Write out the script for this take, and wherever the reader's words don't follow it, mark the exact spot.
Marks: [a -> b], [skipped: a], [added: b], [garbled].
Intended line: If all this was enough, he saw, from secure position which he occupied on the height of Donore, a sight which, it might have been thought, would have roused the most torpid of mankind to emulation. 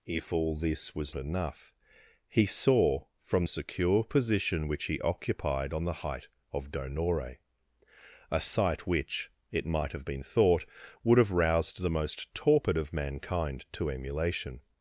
If all this was enough, he saw, from secure position which he occupied on the height of Donore, a sight which, it might have been thought, would have roused the most torpid of mankind to emulation.